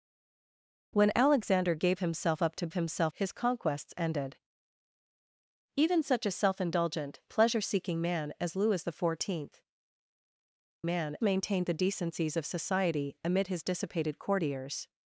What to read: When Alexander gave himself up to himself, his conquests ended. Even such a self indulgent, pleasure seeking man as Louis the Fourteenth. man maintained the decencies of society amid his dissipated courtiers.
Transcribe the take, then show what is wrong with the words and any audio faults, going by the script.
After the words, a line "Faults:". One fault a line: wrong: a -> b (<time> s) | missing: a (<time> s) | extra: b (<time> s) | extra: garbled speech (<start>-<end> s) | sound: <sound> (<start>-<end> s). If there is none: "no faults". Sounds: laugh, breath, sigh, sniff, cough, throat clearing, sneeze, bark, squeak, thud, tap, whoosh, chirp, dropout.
When Alexander gave himself up to himself, his conquests ended. Even such a self indulgent, pleasure seeking man as Louis the Fourteenth. man maintained the decencies of society amid his dissipated courtiers.
Faults:
no faults